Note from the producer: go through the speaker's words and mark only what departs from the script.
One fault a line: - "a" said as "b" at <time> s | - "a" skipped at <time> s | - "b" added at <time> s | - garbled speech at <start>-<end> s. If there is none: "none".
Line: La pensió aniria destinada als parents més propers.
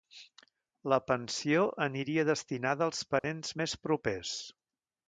none